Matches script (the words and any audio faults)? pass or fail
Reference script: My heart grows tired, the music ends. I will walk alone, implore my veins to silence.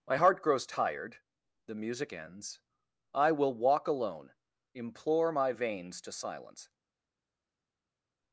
pass